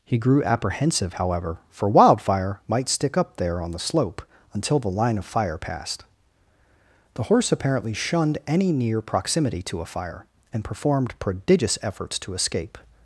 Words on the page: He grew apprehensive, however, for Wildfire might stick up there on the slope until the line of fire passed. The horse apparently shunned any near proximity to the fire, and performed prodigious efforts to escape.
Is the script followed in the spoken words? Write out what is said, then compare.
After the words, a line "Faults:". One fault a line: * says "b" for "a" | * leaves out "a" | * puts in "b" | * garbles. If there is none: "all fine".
He grew apprehensive, however, for Wildfire might stick up there on the slope until the line of fire passed. The horse apparently shunned any near proximity to a fire, and performed prodigious efforts to escape.
Faults:
* says "a" for "the"